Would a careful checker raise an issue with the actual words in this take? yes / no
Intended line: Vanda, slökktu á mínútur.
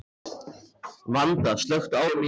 no